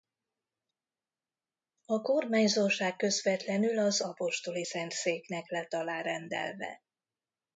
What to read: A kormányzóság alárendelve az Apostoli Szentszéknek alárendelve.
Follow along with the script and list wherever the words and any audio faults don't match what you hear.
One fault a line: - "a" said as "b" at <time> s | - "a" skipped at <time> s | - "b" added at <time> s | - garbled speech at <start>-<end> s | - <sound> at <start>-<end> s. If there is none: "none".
- "alárendelve" said as "közvetlenül" at 3.0 s
- "lett" added at 5.5 s